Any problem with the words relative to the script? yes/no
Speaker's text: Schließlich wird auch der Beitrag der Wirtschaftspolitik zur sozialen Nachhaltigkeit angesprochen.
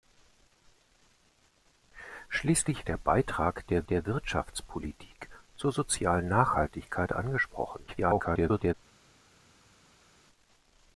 yes